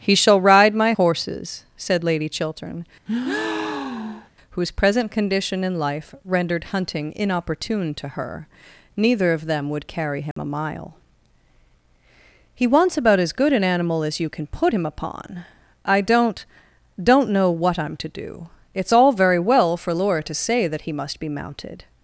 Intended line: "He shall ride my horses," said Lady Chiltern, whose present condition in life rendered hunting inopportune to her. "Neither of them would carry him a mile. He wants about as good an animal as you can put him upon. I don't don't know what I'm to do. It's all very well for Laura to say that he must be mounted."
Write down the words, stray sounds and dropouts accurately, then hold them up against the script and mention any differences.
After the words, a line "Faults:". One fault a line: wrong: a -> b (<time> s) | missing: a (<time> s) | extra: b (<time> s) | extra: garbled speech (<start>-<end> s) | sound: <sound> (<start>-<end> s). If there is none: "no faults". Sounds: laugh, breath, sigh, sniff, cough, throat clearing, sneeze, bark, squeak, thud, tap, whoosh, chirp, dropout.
"He shall ride my horses," said Lady Chiltern, whose present condition in life rendered hunting inopportune to her. "Neither of them would carry him a mile. He wants about as good an animal as you can put him upon. I don't don't know what I'm to do. It's all very well for Laura to say that he must be mounted."
Faults:
sound: breath (3.1-4.3 s)
sound: dropout (10.3-10.4 s)